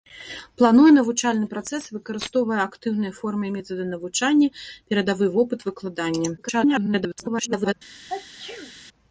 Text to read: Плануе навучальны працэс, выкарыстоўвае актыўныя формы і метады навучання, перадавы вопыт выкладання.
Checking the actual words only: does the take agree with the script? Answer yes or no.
no